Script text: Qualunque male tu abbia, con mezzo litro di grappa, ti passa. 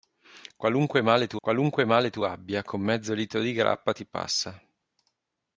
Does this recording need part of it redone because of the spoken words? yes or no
yes